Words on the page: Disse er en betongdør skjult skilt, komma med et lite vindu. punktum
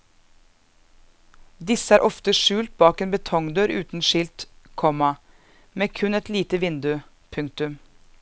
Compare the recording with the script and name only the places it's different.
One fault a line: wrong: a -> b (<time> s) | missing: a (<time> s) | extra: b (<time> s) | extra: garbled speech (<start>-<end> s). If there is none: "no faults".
extra: ofte skjult bak (2.1 s)
wrong: skjult -> uten (3.8 s)
extra: kun (6.0 s)